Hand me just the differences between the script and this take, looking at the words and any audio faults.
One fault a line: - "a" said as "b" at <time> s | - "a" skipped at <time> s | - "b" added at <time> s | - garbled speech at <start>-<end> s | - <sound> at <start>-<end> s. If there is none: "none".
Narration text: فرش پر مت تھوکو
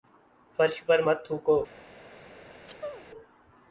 - sneeze at 2.6-3.1 s